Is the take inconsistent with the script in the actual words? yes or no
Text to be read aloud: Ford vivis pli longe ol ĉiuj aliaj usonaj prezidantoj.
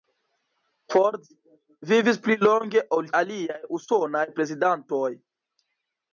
yes